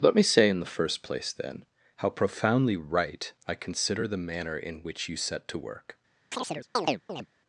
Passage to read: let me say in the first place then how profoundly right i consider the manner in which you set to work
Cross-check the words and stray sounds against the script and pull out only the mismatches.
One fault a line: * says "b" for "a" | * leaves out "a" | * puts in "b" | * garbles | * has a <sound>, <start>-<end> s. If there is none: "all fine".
* has a chirp, 6.3-7.3 s